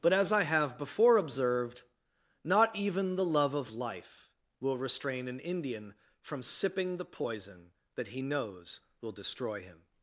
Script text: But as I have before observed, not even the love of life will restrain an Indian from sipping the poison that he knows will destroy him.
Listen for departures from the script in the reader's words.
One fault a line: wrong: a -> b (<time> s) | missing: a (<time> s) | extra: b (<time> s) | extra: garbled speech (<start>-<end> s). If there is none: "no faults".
no faults